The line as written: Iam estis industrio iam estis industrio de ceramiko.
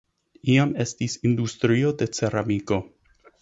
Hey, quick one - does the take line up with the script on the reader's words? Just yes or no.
no